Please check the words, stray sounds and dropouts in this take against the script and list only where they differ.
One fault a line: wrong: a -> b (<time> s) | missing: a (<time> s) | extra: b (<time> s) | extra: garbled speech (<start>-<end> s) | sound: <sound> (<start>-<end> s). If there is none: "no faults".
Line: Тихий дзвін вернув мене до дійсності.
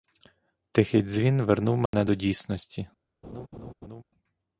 sound: dropout (1.9-1.9 s)
sound: laugh (3.2-4.0 s)